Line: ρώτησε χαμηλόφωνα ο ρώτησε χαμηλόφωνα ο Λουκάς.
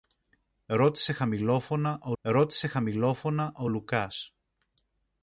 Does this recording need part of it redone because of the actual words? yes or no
no